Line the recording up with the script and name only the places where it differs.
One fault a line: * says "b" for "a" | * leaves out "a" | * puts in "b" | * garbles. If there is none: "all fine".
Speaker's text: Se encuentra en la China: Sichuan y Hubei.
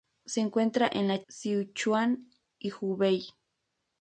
* leaves out "China"